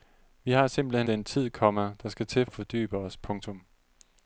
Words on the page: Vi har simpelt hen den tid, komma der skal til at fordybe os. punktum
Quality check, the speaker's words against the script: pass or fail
pass